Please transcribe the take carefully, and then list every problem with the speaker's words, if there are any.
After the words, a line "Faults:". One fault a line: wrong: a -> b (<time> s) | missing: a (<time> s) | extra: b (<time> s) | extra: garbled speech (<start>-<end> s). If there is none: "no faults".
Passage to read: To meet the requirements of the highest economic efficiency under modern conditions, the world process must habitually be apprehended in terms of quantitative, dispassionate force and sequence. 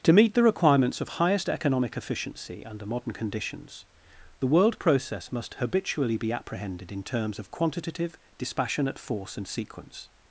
To meet the requirements of highest economic efficiency under modern conditions, the world process must habitually be apprehended in terms of quantitative, dispassionate force and sequence.
Faults:
missing: the (1.1 s)